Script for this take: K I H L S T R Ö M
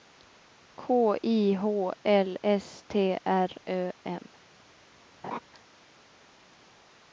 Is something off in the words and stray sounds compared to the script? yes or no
yes